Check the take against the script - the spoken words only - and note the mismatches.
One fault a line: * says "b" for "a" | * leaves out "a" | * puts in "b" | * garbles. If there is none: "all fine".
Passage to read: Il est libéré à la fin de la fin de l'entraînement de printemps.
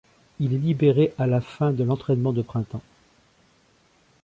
* leaves out "la fin de"